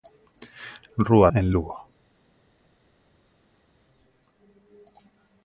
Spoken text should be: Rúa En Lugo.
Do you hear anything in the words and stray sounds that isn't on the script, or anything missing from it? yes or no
no